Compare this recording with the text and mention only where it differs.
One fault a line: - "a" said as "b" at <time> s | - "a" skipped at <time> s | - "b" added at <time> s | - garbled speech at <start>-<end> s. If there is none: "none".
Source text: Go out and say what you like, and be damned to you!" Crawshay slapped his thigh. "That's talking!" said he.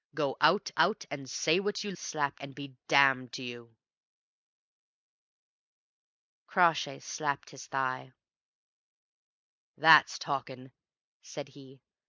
- "out" added at 0.8 s
- "like" said as "slapped" at 1.9 s